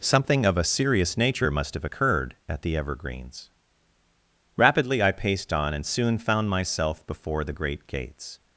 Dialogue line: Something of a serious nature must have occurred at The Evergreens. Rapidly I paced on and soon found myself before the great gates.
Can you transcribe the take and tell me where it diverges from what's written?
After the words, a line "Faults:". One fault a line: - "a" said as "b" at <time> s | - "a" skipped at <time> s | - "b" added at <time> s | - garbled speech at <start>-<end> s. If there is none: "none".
Something of a serious nature must have occurred at The Evergreens. Rapidly I paced on and soon found myself before the great gates.
Faults:
none